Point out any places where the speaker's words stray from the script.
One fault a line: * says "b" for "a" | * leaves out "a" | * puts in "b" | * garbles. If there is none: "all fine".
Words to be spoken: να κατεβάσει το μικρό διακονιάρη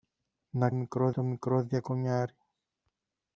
* says "μικρό" for "κατεβάσει"